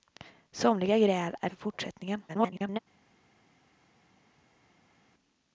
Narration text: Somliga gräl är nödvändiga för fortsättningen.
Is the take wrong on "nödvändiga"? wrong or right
wrong